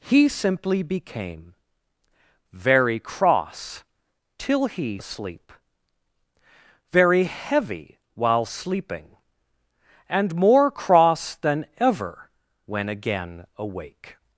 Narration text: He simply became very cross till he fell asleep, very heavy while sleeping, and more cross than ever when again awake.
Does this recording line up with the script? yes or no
no